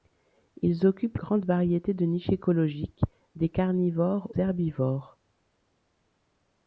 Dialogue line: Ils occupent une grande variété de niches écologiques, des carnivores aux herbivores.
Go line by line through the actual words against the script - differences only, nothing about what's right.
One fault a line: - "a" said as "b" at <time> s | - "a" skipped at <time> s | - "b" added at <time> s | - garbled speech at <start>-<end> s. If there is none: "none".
- "une" skipped at 1.2 s
- "aux" skipped at 4.3 s